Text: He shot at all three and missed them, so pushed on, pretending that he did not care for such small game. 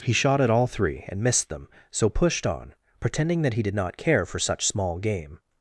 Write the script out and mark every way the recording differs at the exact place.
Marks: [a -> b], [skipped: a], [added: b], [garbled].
He shot at all three and missed them, so pushed on, pretending that he did not care for such small game.